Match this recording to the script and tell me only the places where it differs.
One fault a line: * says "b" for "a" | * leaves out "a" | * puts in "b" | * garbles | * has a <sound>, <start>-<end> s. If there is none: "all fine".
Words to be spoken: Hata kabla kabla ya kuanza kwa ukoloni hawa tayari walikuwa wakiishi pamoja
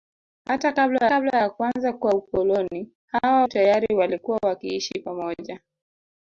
all fine